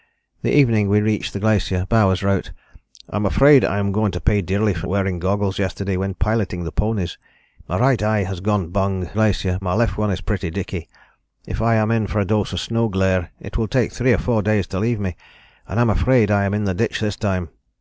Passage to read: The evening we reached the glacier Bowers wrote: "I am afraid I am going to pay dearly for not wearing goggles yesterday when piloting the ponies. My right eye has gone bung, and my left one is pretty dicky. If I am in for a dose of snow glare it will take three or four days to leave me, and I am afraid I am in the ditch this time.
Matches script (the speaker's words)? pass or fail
fail